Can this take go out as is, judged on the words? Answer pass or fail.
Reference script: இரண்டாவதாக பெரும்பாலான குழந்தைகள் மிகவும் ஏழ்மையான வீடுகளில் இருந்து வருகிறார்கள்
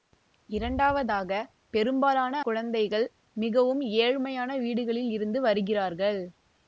pass